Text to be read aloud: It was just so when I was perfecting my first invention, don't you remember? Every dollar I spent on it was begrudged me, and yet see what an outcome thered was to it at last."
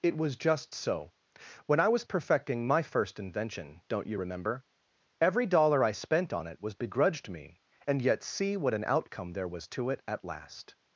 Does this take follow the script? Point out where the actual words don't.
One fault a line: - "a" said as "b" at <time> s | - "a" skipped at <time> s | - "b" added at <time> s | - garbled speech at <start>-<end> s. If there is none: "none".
- "thered" said as "there" at 9.3 s